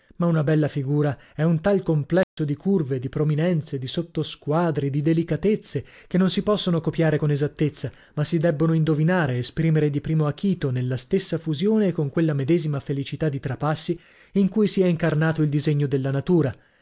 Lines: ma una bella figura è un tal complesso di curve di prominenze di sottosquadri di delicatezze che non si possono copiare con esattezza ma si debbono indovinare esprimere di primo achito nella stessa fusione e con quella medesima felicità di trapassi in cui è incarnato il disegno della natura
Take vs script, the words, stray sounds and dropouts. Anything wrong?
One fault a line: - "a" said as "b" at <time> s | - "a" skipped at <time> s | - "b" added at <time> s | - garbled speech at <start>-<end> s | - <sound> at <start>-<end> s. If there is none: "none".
- dropout at 2.2-2.4 s
- "si" added at 14.7 s